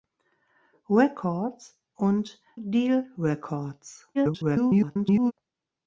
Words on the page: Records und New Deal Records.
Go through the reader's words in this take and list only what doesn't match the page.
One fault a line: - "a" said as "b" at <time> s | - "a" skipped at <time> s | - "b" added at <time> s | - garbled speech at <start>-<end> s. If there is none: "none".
- "New" skipped at 2.4 s
- garbled speech at 4.1-5.3 s